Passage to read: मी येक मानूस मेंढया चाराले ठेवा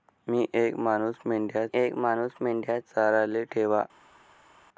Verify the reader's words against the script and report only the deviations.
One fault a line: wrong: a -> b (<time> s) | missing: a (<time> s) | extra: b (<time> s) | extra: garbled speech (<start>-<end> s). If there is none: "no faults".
extra: येक मानूस मेंढया (1.7 s)